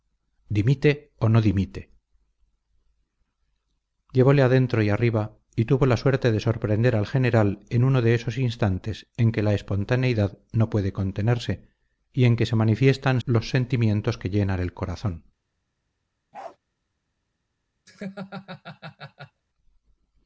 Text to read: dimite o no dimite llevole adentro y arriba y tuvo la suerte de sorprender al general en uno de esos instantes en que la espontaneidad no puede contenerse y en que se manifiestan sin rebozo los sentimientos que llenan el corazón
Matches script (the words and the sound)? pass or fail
fail